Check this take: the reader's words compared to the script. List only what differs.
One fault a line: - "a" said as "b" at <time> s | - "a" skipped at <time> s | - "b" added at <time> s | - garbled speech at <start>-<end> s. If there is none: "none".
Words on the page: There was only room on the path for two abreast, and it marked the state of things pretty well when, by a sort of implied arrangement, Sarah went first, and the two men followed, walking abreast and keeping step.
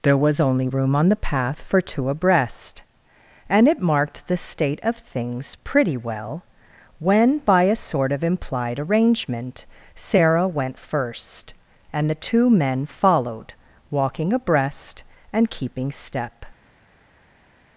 none